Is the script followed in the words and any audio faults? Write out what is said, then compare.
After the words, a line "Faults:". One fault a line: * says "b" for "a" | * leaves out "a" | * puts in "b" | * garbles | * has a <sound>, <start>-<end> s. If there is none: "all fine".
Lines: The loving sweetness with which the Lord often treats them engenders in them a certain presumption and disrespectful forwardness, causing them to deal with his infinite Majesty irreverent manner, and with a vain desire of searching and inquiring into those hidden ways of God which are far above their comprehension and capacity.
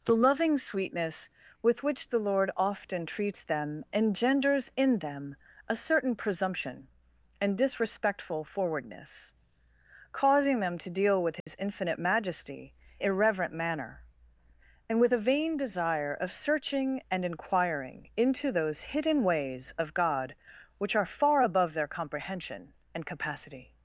The loving sweetness with which the Lord often treats them engenders in them a certain presumption and disrespectful forwardness, causing them to deal with his infinite Majesty irreverent manner, and with a vain desire of searching and inquiring into those hidden ways of God which are far above their comprehension and capacity.
Faults:
* has a dropout, 11.4-11.5 s